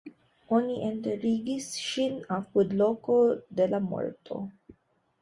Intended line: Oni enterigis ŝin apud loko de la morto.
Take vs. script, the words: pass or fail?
pass